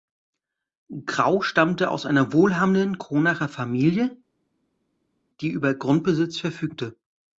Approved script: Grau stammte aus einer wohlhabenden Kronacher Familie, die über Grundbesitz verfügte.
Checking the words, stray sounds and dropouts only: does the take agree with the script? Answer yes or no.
yes